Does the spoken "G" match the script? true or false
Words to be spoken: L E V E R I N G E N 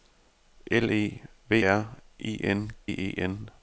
false